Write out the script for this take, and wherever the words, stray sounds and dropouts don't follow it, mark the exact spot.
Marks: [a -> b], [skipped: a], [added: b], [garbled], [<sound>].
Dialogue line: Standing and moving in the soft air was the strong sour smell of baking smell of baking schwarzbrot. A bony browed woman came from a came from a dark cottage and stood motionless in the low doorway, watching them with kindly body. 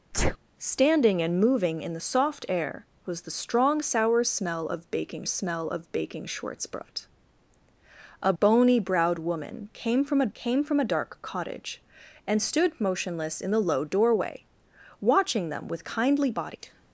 [sneeze] Standing and moving in the soft air was the strong sour smell of baking smell of baking schwarzbrot. A bony browed woman came from a came from a dark cottage and stood motionless in the low doorway, watching them with kindly body.